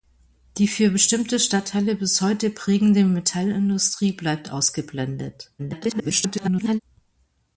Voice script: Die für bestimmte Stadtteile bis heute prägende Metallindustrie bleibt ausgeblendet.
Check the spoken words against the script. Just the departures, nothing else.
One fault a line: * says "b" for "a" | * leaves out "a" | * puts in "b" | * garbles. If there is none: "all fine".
* garbles